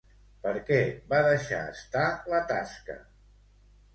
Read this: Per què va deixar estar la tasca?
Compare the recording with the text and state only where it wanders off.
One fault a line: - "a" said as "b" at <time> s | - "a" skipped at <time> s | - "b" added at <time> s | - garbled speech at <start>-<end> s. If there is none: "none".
none